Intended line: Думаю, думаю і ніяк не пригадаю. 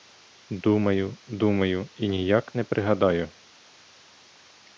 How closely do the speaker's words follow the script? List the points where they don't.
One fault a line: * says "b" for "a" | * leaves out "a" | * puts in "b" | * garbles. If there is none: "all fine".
all fine